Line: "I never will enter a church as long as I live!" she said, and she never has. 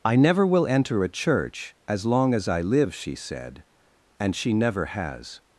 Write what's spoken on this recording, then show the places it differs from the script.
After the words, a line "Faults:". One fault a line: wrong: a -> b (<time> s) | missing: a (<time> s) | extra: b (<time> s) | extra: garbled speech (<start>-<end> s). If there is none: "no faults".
"I never will enter a church as long as I live!" she said, and she never has.
Faults:
no faults